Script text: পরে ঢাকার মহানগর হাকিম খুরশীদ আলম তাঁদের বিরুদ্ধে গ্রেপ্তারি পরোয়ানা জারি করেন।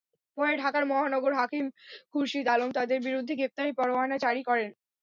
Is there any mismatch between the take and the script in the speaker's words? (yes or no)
no